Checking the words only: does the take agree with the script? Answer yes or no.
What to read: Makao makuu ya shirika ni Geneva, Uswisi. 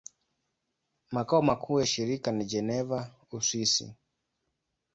yes